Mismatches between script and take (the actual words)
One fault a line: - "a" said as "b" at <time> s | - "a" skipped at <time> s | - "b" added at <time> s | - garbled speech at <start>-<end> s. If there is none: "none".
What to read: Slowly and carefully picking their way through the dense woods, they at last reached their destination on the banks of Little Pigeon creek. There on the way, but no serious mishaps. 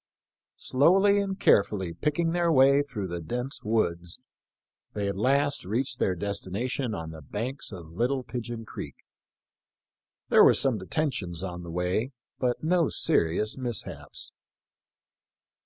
- "were some detentions" added at 10.4 s